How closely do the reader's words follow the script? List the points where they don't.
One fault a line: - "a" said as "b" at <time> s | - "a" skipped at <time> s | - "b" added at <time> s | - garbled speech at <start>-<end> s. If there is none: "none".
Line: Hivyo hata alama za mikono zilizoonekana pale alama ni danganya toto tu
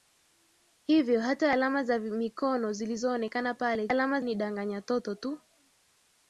none